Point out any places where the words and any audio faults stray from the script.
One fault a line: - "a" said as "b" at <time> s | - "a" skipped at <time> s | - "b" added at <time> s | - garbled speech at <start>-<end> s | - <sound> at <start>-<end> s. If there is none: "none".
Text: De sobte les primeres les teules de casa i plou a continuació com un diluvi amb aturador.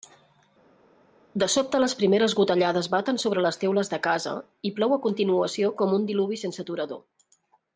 - "gotellades baten sobre" added at 2.4 s
- "amb" said as "sense" at 6.4 s